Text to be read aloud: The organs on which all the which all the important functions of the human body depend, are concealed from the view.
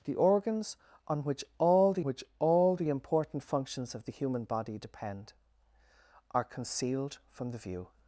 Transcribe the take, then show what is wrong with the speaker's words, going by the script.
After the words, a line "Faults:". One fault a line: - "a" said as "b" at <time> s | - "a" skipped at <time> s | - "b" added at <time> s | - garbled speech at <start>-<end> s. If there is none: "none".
The organs on which all the which all the important functions of the human body depend, are concealed from the view.
Faults:
none